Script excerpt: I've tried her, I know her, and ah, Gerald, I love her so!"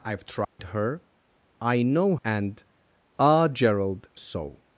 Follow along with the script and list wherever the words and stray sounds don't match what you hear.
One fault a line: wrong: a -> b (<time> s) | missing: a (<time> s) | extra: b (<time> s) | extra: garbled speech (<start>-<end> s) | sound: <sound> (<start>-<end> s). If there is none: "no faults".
sound: dropout (0.4-0.6 s)
missing: her (2.1 s)
missing: I love her (4.1 s)